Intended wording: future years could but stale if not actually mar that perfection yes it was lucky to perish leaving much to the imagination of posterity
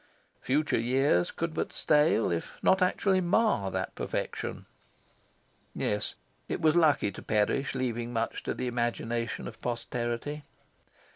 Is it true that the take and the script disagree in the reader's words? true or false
false